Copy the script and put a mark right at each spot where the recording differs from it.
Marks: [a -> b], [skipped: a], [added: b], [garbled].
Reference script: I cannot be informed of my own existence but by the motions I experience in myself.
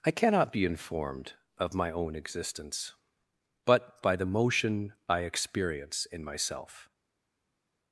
I cannot be informed of my own existence but by the [motions -> motion] I experience in myself.